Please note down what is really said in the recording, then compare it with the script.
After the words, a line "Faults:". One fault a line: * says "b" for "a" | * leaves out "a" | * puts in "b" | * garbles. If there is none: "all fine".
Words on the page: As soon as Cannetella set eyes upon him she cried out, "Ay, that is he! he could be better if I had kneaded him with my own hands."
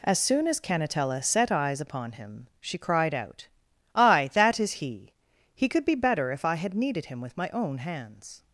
As soon as Cannetella set eyes upon him she cried out, "Ay, that is he! he could be better if I had kneaded him with my own hands."
Faults:
all fine